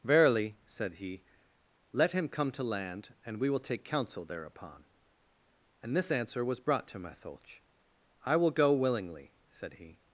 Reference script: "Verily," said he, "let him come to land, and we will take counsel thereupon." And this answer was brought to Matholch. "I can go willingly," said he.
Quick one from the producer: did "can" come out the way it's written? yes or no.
no